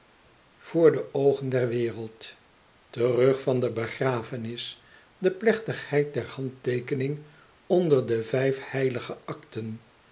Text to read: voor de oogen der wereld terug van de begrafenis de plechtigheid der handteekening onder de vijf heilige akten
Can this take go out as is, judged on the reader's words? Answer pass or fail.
pass